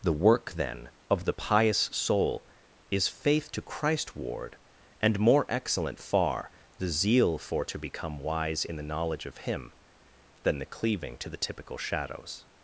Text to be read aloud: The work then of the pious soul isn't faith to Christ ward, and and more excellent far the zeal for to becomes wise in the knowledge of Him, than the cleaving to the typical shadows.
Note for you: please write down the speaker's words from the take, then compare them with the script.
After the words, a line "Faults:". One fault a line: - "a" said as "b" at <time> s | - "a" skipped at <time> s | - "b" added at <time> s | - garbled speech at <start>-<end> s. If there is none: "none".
The work then of the pious soul is faith to Christ ward, and more excellent far the zeal for to become wise in the knowledge of Him, than the cleaving to the typical shadows.
Faults:
- "isn't" said as "is" at 2.9 s
- "and" skipped at 5.2 s
- "becomes" said as "become" at 7.8 s